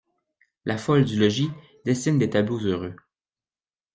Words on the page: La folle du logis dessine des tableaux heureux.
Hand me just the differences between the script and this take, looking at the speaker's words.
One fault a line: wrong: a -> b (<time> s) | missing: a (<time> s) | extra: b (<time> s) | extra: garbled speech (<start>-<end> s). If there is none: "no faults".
no faults